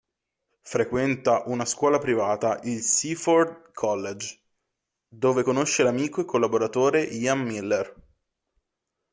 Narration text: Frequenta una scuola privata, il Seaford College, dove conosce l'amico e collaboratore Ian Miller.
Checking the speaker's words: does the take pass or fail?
pass